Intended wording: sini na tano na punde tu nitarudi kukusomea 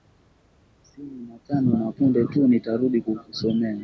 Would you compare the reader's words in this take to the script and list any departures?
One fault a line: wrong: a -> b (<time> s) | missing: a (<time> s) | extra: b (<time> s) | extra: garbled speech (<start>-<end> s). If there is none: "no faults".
no faults